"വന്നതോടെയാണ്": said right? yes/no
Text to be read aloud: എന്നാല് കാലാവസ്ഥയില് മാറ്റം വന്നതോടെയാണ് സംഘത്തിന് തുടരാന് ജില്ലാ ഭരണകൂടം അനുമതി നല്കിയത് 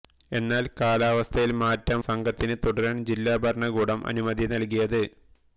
no